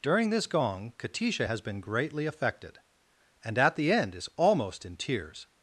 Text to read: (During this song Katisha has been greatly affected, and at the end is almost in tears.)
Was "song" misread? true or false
true